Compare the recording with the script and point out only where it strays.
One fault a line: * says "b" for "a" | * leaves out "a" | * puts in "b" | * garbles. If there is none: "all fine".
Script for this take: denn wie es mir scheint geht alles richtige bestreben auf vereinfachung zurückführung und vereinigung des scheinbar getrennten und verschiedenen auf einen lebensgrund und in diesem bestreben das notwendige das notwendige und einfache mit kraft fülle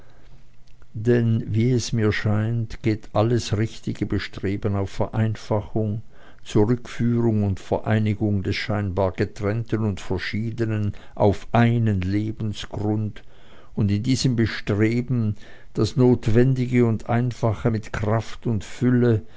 * leaves out "das notwendige"
* puts in "und"